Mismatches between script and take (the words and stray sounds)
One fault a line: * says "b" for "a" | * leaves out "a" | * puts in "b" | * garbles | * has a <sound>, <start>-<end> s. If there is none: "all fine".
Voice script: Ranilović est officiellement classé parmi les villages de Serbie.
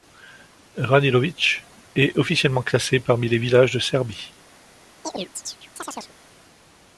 * has a chirp, 5.0-6.1 s